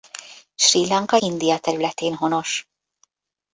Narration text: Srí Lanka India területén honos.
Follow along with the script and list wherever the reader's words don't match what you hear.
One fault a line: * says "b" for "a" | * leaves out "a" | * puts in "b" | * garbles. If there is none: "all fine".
all fine